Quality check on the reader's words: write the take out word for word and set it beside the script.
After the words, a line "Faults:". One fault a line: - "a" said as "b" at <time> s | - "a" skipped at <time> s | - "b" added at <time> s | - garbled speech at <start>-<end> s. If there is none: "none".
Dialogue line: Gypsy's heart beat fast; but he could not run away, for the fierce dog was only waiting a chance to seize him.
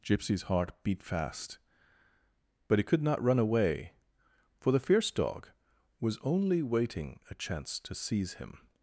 Gypsy's heart beat fast; but he could not run away, for the fierce dog was only waiting a chance to seize him.
Faults:
none